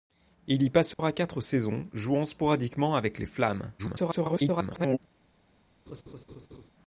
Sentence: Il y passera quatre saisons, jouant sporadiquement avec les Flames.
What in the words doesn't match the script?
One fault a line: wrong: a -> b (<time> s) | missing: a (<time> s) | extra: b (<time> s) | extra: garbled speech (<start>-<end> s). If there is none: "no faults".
extra: garbled speech (3.8-5.0 s)